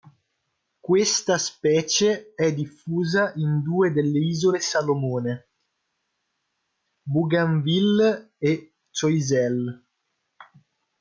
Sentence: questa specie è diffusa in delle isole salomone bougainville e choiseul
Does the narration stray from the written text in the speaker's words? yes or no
yes